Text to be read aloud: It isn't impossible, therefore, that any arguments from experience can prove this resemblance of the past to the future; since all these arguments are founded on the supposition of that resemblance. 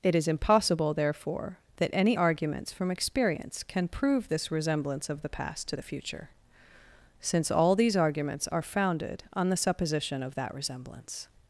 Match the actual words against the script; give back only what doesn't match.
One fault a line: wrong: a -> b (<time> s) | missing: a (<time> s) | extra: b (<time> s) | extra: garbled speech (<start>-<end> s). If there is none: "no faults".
wrong: isn't -> is (0.1 s)